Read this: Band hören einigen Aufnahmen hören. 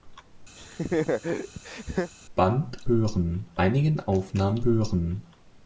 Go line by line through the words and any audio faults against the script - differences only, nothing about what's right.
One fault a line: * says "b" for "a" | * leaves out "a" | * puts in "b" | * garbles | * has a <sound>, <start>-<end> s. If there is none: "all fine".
* has a laugh, 0.6-2.1 s